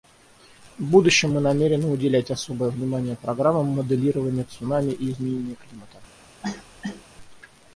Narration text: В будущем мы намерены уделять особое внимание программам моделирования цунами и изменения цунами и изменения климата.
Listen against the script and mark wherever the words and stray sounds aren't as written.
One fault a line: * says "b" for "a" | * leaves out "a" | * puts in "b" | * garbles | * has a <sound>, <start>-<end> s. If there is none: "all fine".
* leaves out "цунами и изменения"
* has a cough, 6.4-7.0 s